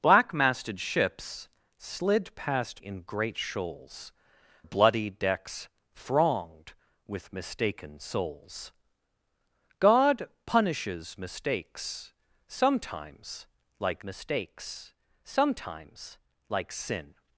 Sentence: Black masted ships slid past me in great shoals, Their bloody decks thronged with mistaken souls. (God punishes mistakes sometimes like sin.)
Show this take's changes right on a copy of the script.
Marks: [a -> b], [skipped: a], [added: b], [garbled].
Black masted ships slid past [skipped: me] in great shoals, [skipped: Their] bloody decks thronged with mistaken souls. (God punishes mistakes sometimes like [added: mistakes sometimes like] sin.)